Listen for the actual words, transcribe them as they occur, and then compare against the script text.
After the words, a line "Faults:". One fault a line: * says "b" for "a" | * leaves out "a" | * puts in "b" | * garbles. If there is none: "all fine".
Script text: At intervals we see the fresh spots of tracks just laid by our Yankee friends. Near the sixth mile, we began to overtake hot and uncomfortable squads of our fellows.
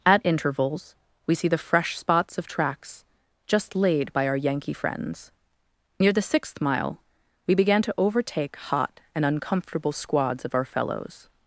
At intervals we see the fresh spots of tracks just laid by our Yankee friends. Near the sixth mile, we began to overtake hot and uncomfortable squads of our fellows.
Faults:
all fine